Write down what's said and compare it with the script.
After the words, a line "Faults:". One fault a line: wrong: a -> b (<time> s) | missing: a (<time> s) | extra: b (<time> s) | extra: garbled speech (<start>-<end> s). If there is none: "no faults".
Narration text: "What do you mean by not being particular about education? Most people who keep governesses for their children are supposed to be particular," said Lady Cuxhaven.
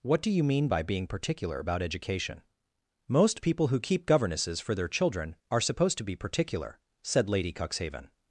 "What do you mean by being particular about education? Most people who keep governesses for their children are supposed to be particular," said Lady Cuxhaven.
Faults:
missing: not (0.8 s)